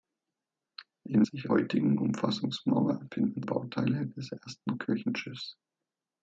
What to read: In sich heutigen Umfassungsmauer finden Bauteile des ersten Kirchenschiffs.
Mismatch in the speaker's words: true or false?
false